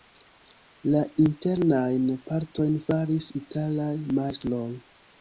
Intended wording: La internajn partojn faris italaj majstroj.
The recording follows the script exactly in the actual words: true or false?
true